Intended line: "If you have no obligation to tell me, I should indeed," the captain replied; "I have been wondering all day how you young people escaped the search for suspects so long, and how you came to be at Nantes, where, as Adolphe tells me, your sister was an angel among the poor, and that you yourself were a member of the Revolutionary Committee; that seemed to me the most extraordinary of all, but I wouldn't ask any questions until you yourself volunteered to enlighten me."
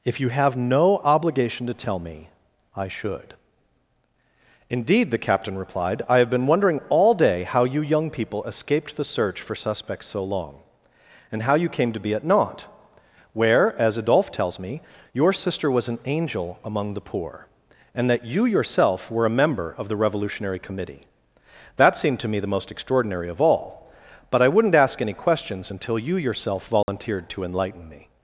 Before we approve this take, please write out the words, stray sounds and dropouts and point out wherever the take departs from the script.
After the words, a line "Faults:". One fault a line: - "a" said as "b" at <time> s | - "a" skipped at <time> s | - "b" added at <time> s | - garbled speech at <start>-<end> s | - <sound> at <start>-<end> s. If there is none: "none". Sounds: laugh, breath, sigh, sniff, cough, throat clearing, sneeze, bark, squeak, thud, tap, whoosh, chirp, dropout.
"If you have no obligation to tell me, I should indeed," the captain replied; "I have been wondering all day how you young people escaped the search for suspects so long, and how you came to be at Nantes, where, as Adolphe tells me, your sister was an angel among the poor, and that you yourself were a member of the Revolutionary Committee; that seemed to me the most extraordinary of all, but I wouldn't ask any questions until you yourself volunteered to enlighten me."
Faults:
- dropout at 26.8-26.9 s